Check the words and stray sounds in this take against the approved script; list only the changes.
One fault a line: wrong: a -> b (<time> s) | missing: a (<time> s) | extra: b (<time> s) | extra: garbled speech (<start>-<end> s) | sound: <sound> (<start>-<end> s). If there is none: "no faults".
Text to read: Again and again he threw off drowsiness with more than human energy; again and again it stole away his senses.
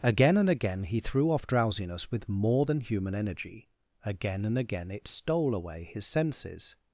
no faults